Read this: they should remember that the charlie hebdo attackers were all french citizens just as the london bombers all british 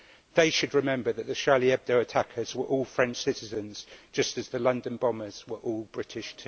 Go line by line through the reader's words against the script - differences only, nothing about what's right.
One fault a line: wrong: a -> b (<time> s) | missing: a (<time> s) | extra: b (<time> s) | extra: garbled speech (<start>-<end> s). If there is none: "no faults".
extra: were (5.5 s)